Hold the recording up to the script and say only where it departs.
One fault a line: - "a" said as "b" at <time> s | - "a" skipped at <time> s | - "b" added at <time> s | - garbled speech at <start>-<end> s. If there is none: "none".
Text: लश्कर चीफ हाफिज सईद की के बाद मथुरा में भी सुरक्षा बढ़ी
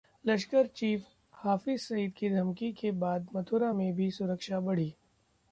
- "धमकी" added at 2.3 s